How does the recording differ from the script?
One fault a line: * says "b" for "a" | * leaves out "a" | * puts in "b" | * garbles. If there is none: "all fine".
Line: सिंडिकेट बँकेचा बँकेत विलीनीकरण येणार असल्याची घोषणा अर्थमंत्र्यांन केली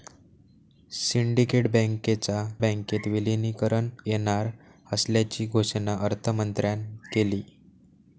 all fine